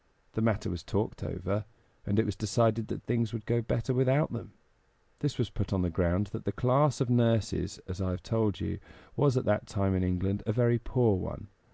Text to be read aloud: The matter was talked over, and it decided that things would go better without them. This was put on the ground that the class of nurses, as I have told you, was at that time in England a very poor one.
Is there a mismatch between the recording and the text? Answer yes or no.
yes